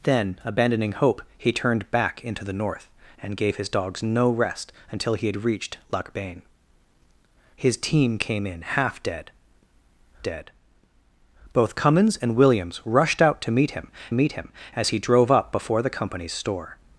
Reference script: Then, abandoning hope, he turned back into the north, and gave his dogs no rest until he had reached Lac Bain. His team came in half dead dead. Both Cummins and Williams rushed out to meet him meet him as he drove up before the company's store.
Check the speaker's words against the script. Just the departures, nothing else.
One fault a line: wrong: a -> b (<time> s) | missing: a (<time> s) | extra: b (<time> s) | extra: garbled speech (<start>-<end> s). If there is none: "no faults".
no faults